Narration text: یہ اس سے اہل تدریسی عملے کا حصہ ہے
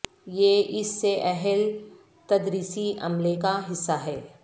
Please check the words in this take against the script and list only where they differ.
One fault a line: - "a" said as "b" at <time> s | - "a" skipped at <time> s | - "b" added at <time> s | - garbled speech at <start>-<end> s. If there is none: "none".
none